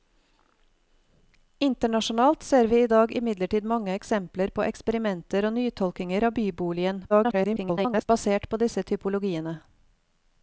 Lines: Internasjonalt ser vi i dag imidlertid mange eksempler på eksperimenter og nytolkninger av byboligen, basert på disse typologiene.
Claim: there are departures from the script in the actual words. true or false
true